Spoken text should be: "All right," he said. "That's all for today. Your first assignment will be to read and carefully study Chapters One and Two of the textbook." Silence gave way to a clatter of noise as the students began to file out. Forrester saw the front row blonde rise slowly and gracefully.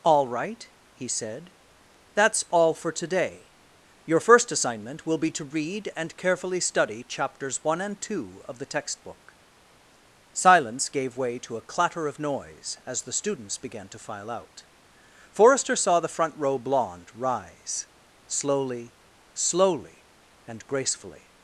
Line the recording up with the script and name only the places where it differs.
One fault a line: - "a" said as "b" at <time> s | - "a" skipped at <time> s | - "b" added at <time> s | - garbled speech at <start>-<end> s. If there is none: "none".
- "slowly" added at 19.3 s